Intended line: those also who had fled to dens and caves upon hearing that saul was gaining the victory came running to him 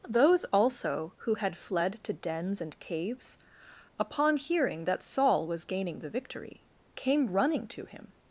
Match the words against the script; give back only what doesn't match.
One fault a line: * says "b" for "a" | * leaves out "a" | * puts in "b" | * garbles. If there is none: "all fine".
all fine